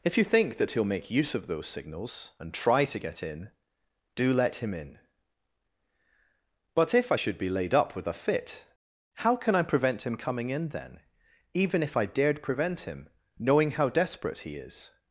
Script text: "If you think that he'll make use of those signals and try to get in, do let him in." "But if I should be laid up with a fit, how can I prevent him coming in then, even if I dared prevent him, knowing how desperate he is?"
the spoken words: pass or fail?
pass